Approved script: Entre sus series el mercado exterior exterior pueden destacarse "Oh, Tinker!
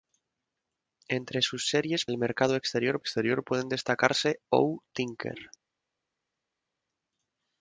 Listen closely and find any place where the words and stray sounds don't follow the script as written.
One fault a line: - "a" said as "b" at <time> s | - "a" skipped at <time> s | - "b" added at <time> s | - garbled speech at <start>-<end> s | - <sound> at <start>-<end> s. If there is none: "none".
none